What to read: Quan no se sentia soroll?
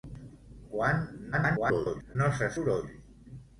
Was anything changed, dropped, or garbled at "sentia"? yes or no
yes